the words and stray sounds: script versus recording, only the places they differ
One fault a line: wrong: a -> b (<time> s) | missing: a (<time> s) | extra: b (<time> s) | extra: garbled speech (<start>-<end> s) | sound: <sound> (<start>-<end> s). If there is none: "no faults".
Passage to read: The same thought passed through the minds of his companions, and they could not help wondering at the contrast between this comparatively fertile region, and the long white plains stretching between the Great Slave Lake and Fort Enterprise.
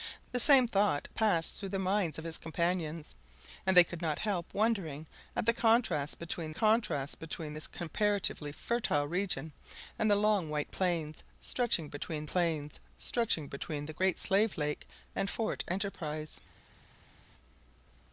extra: contrast between (6.5 s)
extra: plains stretching between (12.2 s)